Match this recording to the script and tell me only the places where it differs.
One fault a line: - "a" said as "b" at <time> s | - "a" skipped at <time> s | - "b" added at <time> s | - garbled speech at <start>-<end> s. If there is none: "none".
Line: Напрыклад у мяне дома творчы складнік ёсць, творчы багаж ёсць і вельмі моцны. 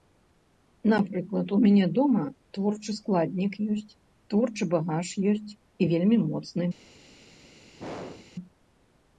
none